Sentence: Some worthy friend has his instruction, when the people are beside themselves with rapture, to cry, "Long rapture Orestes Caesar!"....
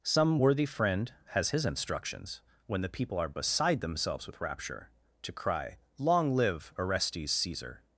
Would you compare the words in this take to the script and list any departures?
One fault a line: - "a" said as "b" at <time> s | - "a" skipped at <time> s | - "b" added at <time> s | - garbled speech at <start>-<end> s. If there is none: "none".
- "instruction" said as "instructions" at 1.6 s
- "rapture" said as "live" at 6.3 s